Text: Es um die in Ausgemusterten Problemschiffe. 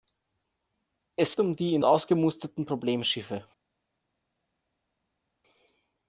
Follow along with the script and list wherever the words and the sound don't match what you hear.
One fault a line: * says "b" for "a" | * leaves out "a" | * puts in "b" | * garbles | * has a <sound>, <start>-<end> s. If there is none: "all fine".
all fine